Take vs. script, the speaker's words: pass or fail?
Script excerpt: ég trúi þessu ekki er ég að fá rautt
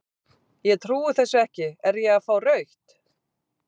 pass